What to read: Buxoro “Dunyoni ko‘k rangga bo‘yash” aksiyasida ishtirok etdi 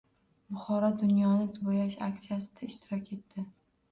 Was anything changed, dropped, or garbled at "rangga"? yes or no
yes